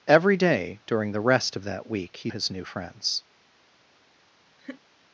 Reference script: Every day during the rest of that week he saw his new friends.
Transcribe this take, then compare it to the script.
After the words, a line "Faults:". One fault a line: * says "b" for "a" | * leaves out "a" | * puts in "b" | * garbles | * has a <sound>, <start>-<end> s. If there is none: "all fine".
Every day during the rest of that week he his new friends.
Faults:
* leaves out "saw"
* has a laugh, 4.6-4.8 s